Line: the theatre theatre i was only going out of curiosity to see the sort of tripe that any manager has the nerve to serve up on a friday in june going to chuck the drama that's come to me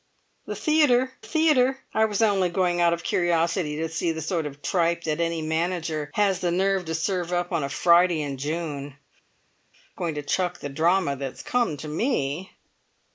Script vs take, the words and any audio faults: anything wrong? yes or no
no